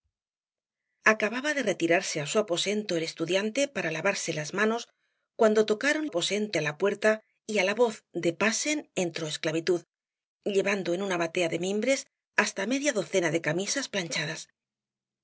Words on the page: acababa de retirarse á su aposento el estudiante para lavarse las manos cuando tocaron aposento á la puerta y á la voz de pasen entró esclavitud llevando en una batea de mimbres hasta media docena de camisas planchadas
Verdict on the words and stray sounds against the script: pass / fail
pass